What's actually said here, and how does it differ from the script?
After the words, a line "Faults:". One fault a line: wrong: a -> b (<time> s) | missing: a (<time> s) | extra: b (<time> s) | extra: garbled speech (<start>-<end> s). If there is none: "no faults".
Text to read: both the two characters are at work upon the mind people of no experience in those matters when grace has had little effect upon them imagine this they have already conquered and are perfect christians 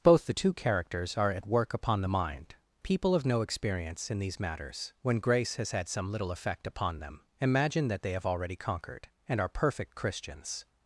both the two characters are at work upon the mind people of no experience in these matters when grace has had some little effect upon them imagine that they have already conquered and are perfect christians
Faults:
wrong: those -> these (4.2 s)
extra: some (5.9 s)
wrong: this -> that (7.9 s)